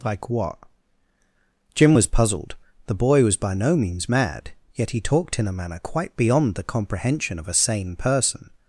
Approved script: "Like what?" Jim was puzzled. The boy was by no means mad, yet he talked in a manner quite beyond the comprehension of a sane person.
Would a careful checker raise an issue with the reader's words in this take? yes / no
no